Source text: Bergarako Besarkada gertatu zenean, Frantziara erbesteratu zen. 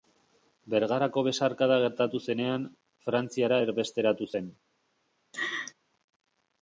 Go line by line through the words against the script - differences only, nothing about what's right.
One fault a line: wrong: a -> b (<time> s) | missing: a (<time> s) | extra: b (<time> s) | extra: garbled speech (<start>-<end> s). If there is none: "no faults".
no faults